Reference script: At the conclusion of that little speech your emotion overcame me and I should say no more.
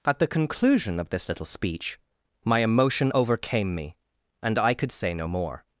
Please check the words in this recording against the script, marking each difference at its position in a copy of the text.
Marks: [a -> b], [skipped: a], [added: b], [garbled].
At the conclusion of [that -> this] little speech [your -> my] emotion overcame me and I [should -> could] say no more.